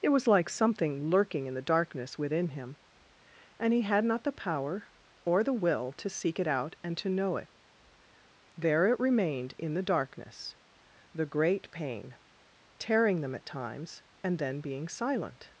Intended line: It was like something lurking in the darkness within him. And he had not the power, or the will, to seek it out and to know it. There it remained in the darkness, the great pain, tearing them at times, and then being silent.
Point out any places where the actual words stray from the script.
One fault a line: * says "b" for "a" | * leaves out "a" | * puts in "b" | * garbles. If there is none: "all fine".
all fine